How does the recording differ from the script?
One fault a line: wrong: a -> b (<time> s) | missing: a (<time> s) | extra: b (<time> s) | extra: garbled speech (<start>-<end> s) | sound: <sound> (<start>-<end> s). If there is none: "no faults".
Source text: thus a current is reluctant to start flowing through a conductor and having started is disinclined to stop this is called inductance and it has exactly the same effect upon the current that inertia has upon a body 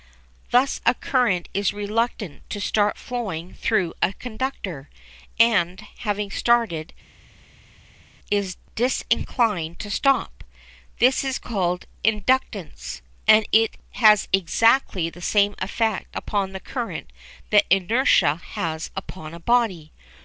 no faults